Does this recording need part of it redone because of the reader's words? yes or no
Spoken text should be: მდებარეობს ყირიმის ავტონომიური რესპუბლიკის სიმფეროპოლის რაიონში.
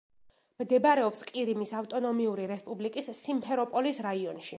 no